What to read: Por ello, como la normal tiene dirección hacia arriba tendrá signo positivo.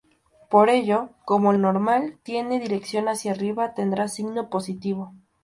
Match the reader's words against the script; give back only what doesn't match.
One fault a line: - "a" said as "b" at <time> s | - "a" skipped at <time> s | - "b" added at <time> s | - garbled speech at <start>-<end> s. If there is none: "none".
- "la" skipped at 1.5 s